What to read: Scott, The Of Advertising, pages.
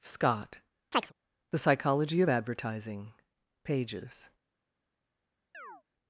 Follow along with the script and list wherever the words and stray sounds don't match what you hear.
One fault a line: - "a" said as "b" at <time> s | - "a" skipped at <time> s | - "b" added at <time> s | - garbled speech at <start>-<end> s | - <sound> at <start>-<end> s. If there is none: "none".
- chirp at 0.9-1.1 s
- "Psychology" added at 1.6 s
- chirp at 5.5-5.8 s